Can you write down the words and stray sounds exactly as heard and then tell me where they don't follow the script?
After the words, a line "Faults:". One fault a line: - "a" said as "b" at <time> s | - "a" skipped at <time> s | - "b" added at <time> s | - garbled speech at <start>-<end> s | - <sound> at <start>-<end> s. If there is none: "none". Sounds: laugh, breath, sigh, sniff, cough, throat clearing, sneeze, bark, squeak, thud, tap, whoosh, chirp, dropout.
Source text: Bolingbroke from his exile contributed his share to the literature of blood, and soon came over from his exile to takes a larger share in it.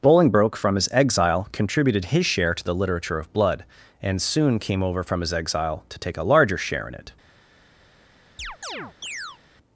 Bolingbroke from his exile contributed his share to the literature of blood, and soon came over from his exile to take a larger share in it.
Faults:
- "takes" said as "take" at 6.0 s
- chirp at 8.4-9.4 s